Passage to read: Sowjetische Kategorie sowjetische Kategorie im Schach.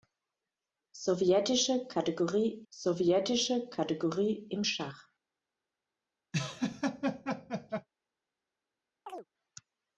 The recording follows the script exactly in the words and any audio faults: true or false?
false